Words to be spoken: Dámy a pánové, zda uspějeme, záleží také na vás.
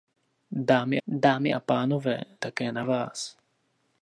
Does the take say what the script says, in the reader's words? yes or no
no